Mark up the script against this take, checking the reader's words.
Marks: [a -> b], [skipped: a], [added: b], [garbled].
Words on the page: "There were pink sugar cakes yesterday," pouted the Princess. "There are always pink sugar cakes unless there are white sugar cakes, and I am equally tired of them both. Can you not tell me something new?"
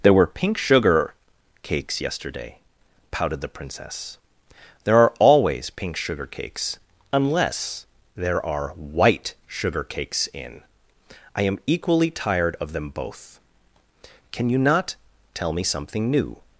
"There were pink sugar cakes yesterday," pouted the Princess. "There are always pink sugar cakes unless there are white sugar cakes, [and -> in] I am equally tired of them both. Can you not tell me something new?"